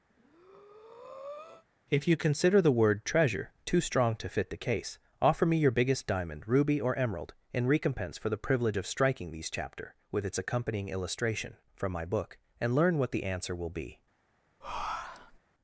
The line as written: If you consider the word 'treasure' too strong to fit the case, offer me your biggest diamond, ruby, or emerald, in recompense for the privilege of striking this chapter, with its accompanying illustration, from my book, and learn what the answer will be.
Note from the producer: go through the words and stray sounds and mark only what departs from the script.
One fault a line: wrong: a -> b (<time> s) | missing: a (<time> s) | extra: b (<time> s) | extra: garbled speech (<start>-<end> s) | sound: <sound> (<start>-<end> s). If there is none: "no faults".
sound: breath (0.1-1.7 s)
wrong: this -> these (9.3 s)
sound: breath (14.6-15.4 s)